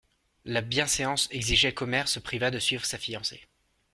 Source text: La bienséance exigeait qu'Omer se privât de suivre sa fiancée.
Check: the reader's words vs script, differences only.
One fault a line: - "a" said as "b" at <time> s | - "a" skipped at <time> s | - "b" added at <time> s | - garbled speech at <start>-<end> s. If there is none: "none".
none